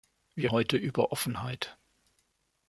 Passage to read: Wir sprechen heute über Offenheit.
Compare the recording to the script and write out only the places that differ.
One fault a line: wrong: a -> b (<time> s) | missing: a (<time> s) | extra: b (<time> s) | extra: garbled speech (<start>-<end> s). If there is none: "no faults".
missing: sprechen (0.5 s)